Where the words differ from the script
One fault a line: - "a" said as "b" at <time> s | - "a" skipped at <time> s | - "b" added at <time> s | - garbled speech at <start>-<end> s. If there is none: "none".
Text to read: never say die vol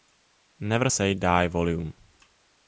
none